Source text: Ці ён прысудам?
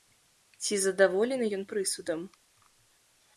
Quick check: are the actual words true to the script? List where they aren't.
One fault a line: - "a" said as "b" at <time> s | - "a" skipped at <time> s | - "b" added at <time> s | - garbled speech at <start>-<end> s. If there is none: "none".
- "задаволены" added at 0.8 s